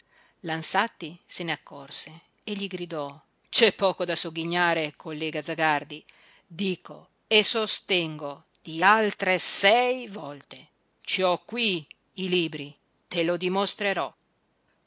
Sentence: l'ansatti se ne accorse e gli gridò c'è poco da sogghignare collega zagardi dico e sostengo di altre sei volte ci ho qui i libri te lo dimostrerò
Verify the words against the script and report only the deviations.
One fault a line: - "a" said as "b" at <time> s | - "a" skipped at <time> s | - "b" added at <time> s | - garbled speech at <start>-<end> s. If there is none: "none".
none